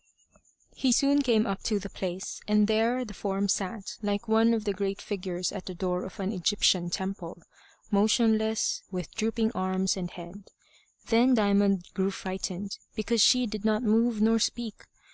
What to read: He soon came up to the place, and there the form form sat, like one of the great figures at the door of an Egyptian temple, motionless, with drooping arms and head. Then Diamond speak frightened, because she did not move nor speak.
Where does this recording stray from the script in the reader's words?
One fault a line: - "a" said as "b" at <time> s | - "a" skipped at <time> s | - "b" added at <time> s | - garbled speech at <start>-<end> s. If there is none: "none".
- "form" skipped at 3.5 s
- "speak" said as "grew" at 11.9 s